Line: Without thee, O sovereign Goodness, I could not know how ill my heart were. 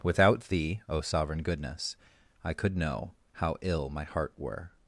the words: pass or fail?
fail